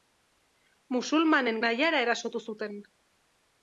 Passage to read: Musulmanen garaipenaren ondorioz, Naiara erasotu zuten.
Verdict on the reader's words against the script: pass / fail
fail